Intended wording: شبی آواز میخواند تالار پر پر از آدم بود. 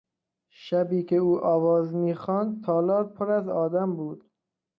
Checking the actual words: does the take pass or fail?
fail